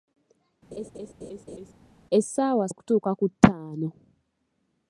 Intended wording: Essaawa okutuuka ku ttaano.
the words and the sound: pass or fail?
fail